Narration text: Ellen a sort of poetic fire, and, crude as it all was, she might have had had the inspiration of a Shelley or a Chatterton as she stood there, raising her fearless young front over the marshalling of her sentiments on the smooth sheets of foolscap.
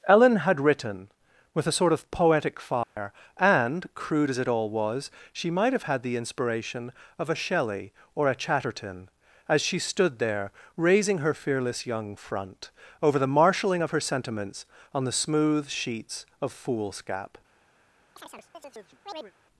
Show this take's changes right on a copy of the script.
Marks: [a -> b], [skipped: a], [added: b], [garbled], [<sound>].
Ellen [added: had written with] a sort of poetic fire, [dropout] and, crude as it all was, she might have had [skipped: had] the inspiration of a Shelley or a Chatterton as she stood there, raising her fearless young front over the marshalling of her sentiments on the smooth sheets of foolscap. [chirp]